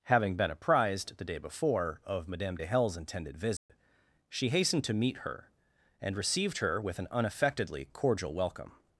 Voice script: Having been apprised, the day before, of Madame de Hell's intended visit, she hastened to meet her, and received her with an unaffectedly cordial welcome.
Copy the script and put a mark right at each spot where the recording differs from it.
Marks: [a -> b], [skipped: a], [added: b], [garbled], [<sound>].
Having been apprised, the day before, of Madame de Hell's intended visit, [dropout] she hastened to meet her, and received her with an unaffectedly cordial welcome.